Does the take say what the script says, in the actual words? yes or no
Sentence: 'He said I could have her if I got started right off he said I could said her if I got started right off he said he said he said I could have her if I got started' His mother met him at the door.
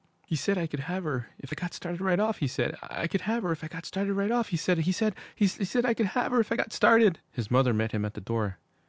no